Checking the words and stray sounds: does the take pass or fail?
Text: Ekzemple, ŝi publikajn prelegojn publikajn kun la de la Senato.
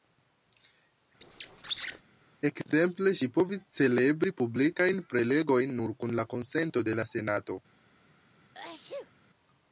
fail